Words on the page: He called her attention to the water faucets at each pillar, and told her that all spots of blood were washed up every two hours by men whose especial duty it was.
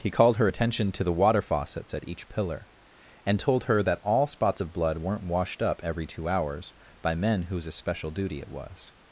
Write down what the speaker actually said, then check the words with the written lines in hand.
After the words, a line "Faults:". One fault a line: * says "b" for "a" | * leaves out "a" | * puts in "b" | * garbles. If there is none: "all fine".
He called her attention to the water faucets at each pillar, and told her that all spots of blood weren't washed up every two hours by men whose especial duty it was.
Faults:
* says "weren't" for "were"